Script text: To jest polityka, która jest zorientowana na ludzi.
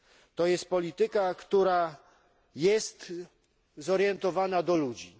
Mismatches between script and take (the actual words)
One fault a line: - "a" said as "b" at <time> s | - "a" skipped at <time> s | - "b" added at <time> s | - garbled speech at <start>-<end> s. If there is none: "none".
none